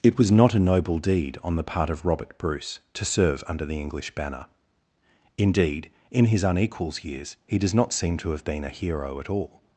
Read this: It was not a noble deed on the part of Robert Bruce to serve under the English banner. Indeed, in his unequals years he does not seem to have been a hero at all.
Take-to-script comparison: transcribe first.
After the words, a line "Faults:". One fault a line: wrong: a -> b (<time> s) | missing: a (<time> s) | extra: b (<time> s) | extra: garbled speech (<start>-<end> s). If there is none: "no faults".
It was not a noble deed on the part of Robert Bruce to serve under the English banner. Indeed, in his unequals years he does not seem to have been a hero at all.
Faults:
no faults